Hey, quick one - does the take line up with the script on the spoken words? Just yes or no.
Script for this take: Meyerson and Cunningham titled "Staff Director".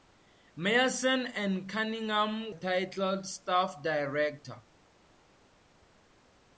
yes